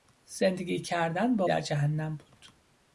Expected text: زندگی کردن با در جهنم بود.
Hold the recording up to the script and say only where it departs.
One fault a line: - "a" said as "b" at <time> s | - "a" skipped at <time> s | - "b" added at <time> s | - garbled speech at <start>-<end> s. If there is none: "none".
none